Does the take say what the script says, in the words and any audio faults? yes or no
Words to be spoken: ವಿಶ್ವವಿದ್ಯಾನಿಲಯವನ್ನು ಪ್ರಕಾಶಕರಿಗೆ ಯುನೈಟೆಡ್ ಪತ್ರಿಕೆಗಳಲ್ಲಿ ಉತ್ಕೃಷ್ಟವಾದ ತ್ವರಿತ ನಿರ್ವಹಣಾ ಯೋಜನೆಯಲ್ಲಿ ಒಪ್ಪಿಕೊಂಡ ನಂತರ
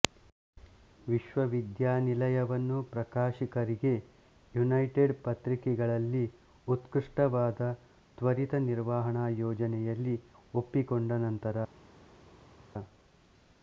yes